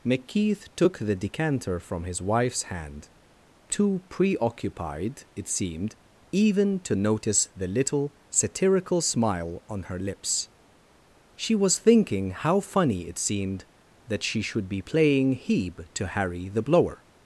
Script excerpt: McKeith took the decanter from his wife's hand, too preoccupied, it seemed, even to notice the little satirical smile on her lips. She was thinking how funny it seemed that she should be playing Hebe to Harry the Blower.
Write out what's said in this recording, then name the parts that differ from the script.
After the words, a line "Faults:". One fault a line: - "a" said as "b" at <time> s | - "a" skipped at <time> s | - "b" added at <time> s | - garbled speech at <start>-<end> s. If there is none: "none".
McKeith took the decanter from his wife's hand, too preoccupied, it seemed, even to notice the little satirical smile on her lips. She was thinking how funny it seemed that she should be playing Hebe to Harry the Blower.
Faults:
none